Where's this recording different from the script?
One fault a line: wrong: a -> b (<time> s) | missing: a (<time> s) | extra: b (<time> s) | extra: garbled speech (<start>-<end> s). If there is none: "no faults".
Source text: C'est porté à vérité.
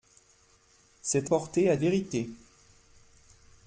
no faults